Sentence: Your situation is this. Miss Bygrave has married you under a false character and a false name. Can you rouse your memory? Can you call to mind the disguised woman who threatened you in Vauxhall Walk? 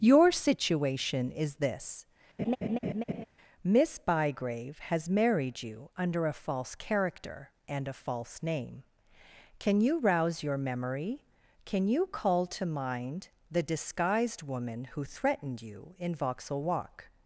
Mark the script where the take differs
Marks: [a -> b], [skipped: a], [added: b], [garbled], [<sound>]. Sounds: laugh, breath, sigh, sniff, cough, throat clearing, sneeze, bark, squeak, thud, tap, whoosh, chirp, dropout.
Your situation is this. [laugh] Miss Bygrave has married you under a false character and a false name. Can you rouse your memory? Can you call to mind the disguised woman who threatened you in Vauxhall Walk?